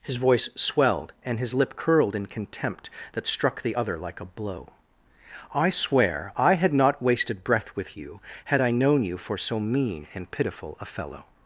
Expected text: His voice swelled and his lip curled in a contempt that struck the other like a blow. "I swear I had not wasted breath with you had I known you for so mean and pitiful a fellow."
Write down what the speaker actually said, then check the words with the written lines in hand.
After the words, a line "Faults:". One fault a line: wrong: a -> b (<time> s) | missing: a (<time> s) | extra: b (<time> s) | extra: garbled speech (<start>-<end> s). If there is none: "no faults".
His voice swelled and his lip curled in contempt that struck the other like a blow. "I swear I had not wasted breath with you had I known you for so mean and pitiful a fellow."
Faults:
missing: a (2.3 s)